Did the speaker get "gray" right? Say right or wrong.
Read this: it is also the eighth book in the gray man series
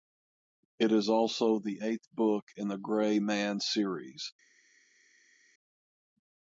right